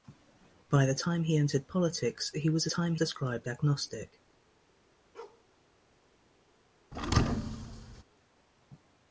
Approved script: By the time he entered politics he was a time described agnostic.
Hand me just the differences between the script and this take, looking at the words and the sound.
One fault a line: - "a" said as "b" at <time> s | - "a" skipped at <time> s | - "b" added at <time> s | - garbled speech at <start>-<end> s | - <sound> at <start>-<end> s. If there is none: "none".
- bark at 5.1-5.4 s
- thud at 6.9-8.0 s